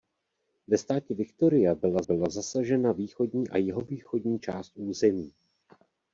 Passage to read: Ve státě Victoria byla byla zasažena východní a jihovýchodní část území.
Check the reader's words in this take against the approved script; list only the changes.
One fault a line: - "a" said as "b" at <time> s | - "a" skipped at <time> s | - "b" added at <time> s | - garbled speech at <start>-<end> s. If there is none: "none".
none